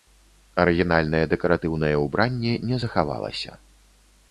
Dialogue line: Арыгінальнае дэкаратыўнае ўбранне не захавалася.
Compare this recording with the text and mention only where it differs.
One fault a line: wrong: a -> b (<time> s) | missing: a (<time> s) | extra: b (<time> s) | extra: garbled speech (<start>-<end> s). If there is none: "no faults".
no faults